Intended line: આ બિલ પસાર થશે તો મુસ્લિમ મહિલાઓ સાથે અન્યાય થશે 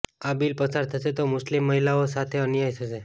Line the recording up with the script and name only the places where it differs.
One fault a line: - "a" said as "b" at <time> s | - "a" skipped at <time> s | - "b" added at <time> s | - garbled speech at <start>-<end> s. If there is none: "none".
none